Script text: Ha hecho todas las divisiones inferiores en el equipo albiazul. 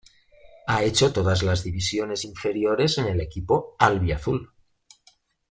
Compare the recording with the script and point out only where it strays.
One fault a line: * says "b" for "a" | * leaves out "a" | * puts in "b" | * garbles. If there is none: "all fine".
all fine